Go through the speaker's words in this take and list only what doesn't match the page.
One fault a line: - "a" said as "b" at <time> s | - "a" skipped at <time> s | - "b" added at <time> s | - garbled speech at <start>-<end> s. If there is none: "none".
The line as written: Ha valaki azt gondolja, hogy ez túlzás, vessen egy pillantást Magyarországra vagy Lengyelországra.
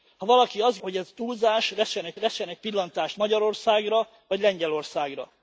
- "gondolja" skipped at 0.8 s
- "vessen egy" added at 2.1 s